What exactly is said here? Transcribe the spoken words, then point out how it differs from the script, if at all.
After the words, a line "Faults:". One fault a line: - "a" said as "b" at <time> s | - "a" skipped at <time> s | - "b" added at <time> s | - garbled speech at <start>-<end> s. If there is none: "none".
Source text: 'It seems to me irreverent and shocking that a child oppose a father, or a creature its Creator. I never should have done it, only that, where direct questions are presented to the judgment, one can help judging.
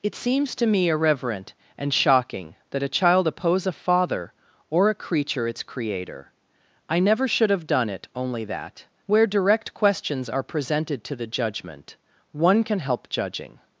'It seems to me irreverent and shocking that a child oppose a father, or a creature its Creator. I never should have done it, only that, where direct questions are presented to the judgment, one can help judging.
Faults:
none